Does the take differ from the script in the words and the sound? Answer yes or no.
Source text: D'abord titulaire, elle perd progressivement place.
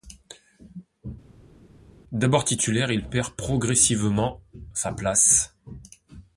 yes